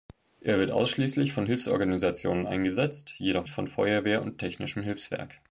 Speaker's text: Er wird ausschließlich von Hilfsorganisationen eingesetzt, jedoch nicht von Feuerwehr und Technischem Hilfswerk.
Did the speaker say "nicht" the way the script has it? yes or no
no